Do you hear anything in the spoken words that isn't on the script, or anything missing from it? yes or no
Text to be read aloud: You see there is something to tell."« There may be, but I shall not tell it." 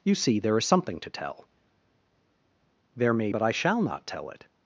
yes